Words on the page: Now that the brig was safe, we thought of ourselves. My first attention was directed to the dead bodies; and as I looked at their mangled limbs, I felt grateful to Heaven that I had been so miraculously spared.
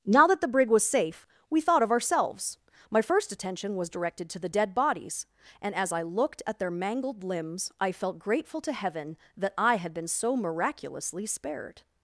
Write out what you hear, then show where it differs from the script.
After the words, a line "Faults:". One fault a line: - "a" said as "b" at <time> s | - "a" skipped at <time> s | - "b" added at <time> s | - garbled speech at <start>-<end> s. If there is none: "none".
Now that the brig was safe, we thought of ourselves. My first attention was directed to the dead bodies; and as I looked at their mangled limbs, I felt grateful to Heaven that I had been so miraculously spared.
Faults:
none